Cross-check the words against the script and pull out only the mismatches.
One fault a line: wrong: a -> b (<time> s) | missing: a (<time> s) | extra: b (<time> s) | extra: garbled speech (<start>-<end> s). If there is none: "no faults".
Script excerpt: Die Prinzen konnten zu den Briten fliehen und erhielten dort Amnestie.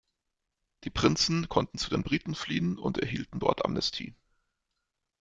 no faults